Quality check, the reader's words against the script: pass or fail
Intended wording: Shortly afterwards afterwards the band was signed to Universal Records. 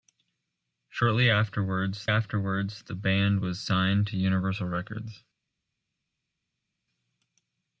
pass